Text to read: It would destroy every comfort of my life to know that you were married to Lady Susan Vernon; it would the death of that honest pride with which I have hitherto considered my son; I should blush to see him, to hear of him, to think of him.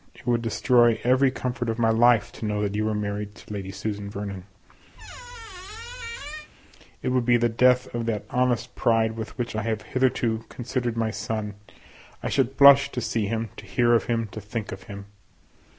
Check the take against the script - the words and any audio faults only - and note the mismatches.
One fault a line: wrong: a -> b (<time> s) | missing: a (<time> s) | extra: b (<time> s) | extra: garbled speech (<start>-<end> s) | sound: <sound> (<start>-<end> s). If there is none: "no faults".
sound: squeak (4.9-6.5 s)
extra: be (7.2 s)